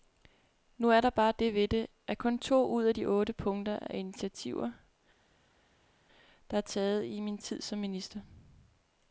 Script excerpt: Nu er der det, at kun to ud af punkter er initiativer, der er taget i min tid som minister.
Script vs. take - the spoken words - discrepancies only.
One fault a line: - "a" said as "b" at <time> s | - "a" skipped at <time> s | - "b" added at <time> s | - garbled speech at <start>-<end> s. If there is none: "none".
- "bare" added at 1.1 s
- "ved det" added at 1.5 s
- "de otte" added at 2.9 s